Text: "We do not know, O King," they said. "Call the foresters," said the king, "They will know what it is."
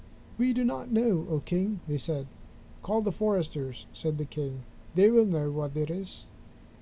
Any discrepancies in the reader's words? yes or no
no